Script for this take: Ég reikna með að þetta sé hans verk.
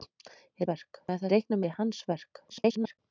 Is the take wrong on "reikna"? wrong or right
wrong